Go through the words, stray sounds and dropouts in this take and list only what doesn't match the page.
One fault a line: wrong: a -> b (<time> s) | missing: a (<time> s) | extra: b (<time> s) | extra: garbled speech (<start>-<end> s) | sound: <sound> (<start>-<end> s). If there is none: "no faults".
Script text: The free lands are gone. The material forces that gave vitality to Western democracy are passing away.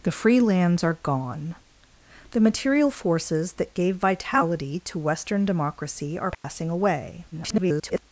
sound: dropout (6.3-6.4 s)
extra: garbled speech (7.3-8.0 s)